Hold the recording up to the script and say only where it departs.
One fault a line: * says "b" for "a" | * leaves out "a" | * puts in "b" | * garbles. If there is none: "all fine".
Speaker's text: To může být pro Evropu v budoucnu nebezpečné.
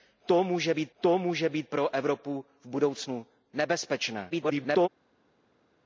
* puts in "to může být"
* garbles